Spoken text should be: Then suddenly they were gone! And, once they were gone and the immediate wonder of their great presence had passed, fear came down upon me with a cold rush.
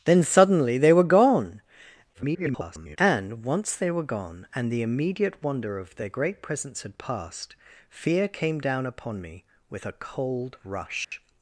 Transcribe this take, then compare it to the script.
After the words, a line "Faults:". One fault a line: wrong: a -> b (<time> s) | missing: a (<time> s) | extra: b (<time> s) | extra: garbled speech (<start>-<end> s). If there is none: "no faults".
Then suddenly they were gone! [garbled] And, once they were gone and the immediate wonder of their great presence had passed, fear came down upon me with a cold rush.
Faults:
extra: garbled speech (2.1-3.0 s)